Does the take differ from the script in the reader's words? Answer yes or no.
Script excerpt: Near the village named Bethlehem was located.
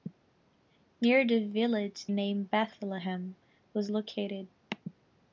no